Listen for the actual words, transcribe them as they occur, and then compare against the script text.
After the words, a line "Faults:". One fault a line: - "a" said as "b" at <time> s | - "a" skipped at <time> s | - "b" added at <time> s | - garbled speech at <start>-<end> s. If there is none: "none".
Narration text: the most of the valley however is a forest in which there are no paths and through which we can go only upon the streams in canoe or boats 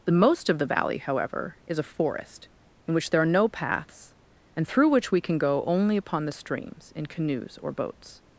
the most of the valley however is a forest in which there are no paths and through which we can go only upon the streams in canoes or boats
Faults:
- "canoe" said as "canoes" at 7.1 s